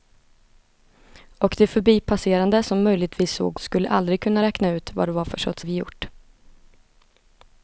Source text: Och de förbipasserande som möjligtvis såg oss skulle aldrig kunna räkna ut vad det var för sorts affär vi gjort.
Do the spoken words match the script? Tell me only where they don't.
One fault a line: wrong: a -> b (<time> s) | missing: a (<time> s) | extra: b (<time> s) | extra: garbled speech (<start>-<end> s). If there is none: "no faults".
missing: oss (3.6 s)
missing: affär (5.6 s)